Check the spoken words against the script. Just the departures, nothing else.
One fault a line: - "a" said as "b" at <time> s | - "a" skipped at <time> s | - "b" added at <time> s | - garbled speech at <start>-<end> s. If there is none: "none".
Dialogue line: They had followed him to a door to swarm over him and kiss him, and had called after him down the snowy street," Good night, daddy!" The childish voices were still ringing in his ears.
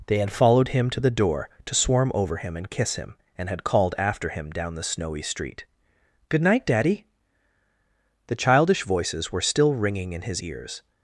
- "a" said as "the" at 1.0 s